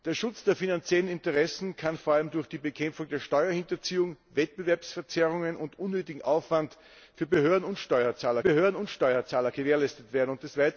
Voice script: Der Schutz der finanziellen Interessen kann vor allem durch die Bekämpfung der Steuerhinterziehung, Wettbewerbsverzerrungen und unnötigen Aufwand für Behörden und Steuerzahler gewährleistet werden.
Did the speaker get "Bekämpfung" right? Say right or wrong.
right